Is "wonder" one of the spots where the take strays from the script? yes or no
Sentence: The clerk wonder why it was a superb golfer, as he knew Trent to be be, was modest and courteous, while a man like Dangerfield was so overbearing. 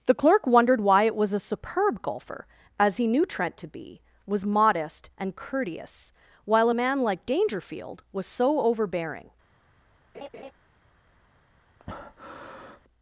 yes